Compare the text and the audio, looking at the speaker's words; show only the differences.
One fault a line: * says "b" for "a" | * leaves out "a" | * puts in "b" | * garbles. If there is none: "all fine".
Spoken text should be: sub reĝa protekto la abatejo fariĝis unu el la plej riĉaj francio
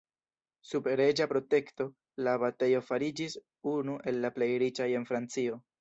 * puts in "en"